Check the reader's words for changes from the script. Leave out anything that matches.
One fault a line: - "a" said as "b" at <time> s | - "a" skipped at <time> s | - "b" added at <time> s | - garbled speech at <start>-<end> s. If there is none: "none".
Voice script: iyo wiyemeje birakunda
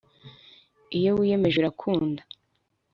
none